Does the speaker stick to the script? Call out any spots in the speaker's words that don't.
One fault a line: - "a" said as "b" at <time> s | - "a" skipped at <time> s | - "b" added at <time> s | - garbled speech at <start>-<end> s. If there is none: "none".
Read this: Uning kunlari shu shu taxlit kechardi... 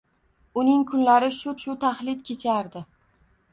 none